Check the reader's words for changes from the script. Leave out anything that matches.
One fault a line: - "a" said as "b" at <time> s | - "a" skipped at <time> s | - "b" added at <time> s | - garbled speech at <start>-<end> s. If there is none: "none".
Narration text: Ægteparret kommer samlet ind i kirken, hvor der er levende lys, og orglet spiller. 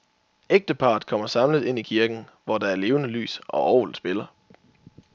none